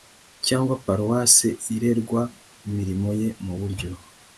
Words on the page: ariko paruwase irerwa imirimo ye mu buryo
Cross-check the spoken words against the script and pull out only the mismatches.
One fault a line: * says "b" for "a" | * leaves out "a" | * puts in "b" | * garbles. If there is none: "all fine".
* says "cyangwa" for "ariko"